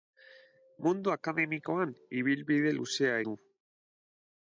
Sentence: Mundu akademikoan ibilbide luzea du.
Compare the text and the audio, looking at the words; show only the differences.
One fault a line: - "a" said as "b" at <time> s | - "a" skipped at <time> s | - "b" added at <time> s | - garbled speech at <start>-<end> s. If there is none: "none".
none